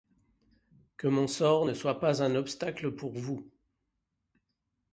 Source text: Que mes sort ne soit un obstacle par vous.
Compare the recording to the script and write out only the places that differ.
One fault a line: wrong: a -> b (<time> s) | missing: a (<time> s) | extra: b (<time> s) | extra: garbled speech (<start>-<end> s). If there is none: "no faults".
wrong: mes -> mon (1.1 s)
extra: pas (2.0 s)
wrong: par -> pour (2.9 s)